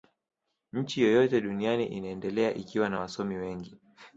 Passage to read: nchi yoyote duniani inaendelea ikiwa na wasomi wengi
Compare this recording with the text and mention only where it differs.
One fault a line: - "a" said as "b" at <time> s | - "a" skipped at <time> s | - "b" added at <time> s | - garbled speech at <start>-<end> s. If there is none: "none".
none